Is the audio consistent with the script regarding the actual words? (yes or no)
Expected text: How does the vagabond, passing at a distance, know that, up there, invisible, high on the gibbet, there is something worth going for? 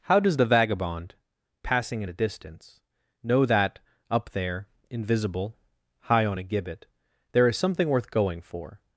no